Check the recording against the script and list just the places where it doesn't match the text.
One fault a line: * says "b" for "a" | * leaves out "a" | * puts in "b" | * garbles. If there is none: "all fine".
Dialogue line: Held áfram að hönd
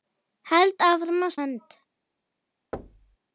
all fine